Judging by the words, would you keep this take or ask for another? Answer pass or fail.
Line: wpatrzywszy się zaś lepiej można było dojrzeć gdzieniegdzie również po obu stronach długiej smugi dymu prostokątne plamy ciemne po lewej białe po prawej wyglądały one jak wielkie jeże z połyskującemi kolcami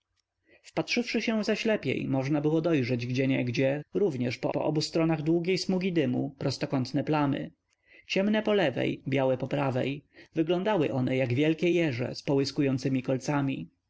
fail